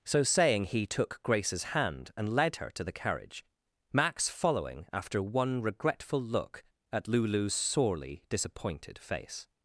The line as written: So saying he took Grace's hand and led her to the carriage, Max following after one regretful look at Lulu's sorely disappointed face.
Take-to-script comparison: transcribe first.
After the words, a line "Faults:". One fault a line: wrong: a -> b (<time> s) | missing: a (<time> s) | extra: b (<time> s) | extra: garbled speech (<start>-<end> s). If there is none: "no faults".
So saying he took Grace's hand and led her to the carriage, Max following after one regretful look at Lulu's sorely disappointed face.
Faults:
no faults